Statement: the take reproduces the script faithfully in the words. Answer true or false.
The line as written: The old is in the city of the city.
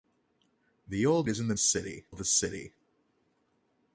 true